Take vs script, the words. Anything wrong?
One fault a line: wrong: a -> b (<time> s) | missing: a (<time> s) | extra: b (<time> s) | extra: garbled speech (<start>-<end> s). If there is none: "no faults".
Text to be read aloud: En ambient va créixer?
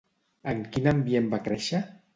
extra: quin (0.8 s)